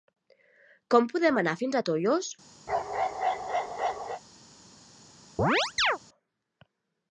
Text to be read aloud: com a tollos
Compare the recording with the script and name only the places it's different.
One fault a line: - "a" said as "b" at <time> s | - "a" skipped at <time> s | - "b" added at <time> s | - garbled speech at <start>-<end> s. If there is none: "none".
- "podem anar fins" added at 1.1 s